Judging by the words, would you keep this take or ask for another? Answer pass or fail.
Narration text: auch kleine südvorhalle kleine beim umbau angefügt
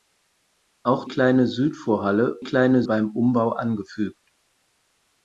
pass